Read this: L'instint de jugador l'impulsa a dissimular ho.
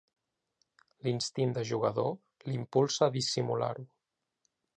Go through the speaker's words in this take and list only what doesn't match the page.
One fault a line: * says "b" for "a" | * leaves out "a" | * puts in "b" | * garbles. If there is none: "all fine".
all fine